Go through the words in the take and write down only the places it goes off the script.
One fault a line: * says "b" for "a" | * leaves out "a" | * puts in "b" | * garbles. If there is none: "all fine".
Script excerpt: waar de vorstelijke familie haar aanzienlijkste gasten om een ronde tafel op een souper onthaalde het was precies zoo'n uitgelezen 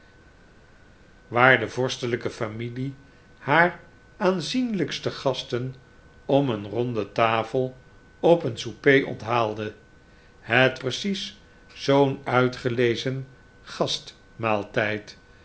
* leaves out "was"